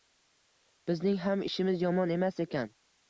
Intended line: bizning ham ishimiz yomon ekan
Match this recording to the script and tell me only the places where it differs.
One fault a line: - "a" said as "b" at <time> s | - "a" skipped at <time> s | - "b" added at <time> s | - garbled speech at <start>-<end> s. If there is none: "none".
- "emas" added at 2.2 s